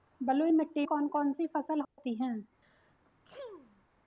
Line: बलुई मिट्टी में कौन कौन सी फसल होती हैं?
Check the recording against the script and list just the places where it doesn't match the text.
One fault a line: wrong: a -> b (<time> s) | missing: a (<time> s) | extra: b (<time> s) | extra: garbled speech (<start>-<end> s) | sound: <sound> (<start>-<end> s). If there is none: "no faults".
missing: में (0.9 s)
sound: dropout (1.8-2.0 s)
sound: sneeze (2.6-3.8 s)